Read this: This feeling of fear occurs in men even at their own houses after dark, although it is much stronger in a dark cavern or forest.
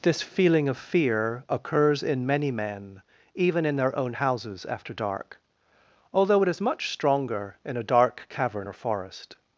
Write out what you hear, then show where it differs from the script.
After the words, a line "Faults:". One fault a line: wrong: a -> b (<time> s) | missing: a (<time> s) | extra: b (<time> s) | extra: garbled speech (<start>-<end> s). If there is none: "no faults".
This feeling of fear occurs in many men even in their own houses after dark, although it is much stronger in a dark cavern or forest.
Faults:
extra: many (2.2 s)
wrong: at -> in (3.6 s)